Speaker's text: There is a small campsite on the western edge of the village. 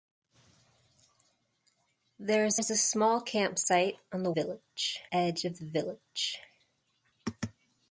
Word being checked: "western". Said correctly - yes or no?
no